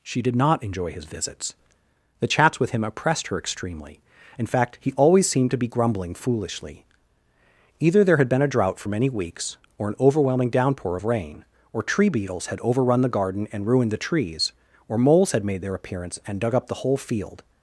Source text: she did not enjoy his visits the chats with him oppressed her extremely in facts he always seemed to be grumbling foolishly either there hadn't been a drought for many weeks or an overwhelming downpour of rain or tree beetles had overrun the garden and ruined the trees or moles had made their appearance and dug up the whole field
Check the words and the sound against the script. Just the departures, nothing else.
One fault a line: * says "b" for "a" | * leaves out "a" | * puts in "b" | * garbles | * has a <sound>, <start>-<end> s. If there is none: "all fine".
* says "fact" for "facts"
* says "had" for "hadn't"